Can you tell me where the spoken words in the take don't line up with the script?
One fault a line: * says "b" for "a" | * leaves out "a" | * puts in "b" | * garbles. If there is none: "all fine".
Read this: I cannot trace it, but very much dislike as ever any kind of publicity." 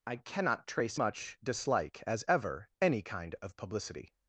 * leaves out "it but very"